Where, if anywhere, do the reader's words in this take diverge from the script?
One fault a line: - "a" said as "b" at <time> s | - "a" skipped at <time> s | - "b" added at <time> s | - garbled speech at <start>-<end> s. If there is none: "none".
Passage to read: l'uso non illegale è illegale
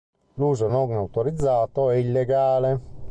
- "illegale" said as "autorizzato" at 0.9 s